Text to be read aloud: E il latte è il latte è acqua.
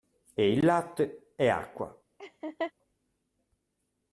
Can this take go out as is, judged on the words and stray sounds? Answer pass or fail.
fail